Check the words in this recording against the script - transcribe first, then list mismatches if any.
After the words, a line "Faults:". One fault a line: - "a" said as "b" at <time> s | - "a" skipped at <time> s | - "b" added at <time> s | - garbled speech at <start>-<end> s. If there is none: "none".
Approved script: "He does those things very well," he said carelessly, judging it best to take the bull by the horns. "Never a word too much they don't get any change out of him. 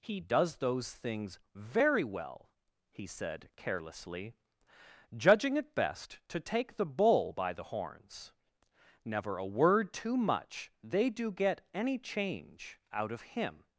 "He does those things very well," he said carelessly, judging it best to take the bull by the horns. "Never a word too much they do get any change out of him.
Faults:
- "don't" said as "do" at 11.1 s